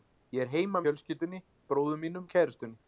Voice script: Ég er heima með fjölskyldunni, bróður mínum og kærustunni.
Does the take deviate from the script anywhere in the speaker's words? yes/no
yes